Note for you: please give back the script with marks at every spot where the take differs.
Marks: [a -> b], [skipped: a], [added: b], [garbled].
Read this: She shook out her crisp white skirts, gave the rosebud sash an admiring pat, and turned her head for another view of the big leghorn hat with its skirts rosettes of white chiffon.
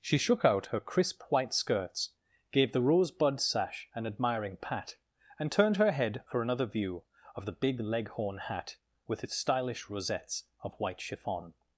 She shook out her crisp white skirts, gave the rosebud sash an admiring pat, and turned her head for another view of the big leghorn hat with its [skirts -> stylish] rosettes of white chiffon.